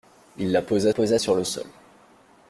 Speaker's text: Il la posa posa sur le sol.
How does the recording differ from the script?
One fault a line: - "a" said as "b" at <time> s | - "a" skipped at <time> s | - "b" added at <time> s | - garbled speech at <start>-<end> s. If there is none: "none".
none